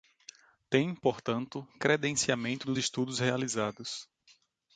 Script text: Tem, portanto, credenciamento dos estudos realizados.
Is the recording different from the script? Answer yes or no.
no